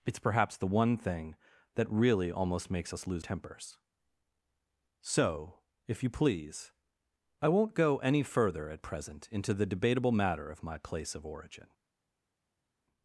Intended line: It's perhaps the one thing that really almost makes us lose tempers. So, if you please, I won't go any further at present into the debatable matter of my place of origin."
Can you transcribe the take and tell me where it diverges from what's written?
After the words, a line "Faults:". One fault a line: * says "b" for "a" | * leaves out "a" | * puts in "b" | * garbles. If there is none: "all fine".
It's perhaps the one thing that really almost makes us lose tempers. So, if you please, I won't go any further at present into the debatable matter of my place of origin."
Faults:
all fine